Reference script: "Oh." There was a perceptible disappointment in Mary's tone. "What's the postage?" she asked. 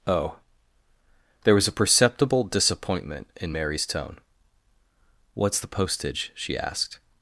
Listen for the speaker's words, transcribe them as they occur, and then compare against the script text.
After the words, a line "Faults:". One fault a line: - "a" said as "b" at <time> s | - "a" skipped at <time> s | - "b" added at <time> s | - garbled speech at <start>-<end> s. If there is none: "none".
"Oh." There was a perceptible disappointment in Mary's tone. "What's the postage?" she asked.
Faults:
none